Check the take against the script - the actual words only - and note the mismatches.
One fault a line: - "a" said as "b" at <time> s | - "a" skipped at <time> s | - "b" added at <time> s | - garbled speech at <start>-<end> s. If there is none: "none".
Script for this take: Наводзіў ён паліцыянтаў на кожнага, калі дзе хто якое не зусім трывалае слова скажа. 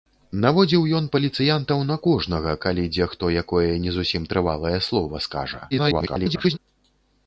- garbled speech at 5.7-6.6 s